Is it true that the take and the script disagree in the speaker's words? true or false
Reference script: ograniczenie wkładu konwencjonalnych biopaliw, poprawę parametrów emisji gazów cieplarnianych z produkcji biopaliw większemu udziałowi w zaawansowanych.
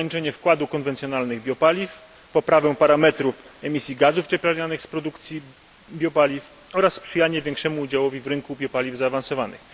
true